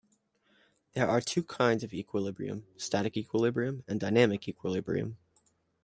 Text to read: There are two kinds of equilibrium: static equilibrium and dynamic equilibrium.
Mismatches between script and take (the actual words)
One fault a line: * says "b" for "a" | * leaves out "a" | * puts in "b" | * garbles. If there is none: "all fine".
all fine